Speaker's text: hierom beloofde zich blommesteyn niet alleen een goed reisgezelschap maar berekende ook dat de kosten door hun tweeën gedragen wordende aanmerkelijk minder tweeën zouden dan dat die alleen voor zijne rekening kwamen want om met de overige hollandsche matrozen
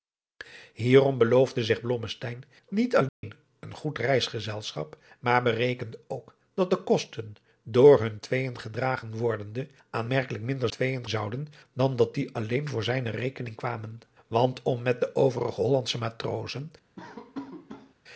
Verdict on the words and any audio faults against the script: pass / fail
fail